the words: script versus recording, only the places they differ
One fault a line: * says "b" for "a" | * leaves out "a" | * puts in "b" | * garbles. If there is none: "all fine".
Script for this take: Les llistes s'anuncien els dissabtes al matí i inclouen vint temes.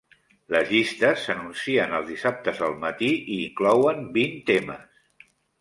all fine